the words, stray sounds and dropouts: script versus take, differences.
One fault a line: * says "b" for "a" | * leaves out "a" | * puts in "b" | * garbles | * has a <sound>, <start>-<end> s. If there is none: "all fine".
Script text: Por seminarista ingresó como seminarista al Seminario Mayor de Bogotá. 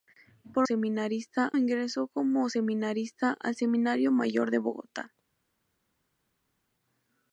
all fine